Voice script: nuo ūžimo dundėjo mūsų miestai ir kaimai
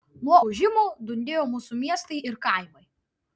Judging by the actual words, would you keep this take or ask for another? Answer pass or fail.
pass